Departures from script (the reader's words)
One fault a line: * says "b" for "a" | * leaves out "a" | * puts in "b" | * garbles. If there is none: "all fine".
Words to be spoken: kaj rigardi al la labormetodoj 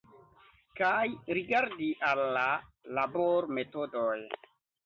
all fine